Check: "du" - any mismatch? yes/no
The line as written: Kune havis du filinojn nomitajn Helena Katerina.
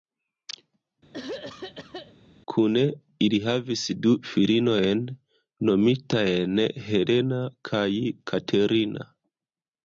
no